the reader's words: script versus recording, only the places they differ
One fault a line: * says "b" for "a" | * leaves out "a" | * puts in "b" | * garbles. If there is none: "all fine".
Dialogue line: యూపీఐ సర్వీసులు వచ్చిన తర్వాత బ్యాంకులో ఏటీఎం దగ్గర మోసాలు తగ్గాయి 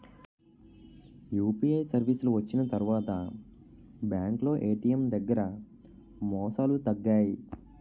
all fine